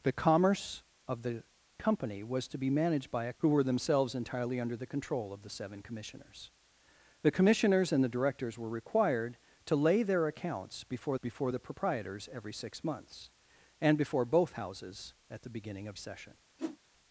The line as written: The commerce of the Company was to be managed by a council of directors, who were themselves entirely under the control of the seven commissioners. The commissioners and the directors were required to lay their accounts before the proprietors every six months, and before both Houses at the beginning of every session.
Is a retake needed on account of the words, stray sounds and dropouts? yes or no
yes